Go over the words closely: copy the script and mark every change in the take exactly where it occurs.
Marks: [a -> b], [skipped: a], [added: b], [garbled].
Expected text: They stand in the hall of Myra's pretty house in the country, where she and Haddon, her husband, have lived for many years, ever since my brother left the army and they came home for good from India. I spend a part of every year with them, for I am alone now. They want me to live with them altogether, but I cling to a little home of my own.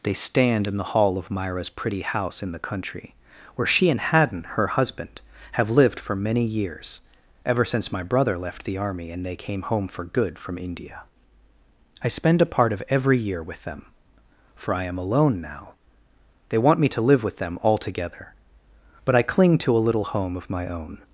They stand in the hall of Myra's pretty house in the country, where she and Haddon, her husband, have lived for many years, ever since my brother left the army and they came home for good from India. I spend a part of every year with them, for I am alone now. They want me to live with them altogether, but I cling to a little home of my own.